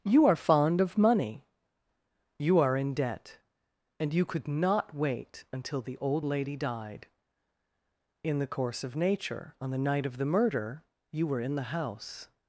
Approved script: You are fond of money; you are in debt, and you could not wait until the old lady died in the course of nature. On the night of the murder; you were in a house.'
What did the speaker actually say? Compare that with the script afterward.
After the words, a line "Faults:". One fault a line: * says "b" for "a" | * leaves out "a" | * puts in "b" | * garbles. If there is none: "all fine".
You are fond of money; you are in debt, and you could not wait until the old lady died in the course of nature. On the night of the murder; you were in the house.'
Faults:
* says "the" for "a"